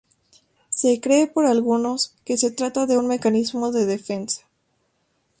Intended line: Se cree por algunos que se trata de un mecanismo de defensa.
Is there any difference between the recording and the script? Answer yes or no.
no